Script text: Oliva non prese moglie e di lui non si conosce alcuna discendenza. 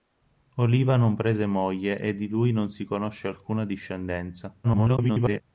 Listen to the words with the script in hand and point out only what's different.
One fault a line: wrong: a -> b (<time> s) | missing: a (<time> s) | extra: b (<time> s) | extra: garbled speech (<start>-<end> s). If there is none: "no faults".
extra: garbled speech (4.6-5.4 s)